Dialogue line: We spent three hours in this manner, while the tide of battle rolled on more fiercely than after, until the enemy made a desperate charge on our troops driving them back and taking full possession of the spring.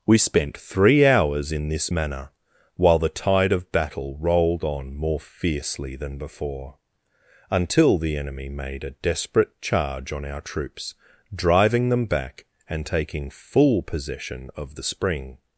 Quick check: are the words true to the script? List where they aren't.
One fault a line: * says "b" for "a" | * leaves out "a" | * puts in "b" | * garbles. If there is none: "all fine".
* says "before" for "after"